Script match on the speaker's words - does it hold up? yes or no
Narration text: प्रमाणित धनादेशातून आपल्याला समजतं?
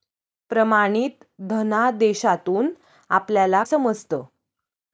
yes